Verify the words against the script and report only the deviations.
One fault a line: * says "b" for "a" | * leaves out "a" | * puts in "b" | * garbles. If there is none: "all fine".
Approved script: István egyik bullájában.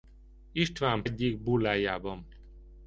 all fine